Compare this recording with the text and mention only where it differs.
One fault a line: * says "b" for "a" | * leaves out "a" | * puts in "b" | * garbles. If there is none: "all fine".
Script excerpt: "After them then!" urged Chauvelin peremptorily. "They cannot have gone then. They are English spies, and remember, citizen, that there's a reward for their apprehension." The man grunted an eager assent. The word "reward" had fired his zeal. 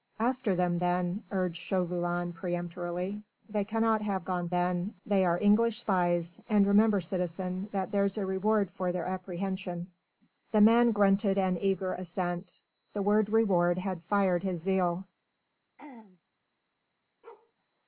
all fine